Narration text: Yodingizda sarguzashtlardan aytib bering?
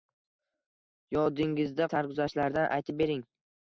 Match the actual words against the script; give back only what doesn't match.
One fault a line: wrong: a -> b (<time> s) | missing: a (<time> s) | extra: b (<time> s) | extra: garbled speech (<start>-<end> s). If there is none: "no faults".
no faults